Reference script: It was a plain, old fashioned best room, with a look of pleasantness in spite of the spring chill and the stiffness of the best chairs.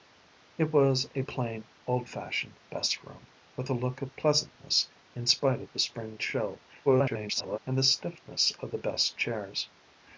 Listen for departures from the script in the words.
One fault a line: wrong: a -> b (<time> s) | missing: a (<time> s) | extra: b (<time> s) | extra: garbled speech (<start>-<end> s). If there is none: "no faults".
extra: garbled speech (6.8-7.6 s)